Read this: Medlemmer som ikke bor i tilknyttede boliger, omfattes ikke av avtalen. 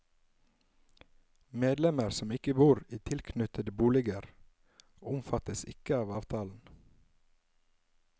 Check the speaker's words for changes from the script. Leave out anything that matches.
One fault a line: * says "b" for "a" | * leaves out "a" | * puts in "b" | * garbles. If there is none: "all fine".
all fine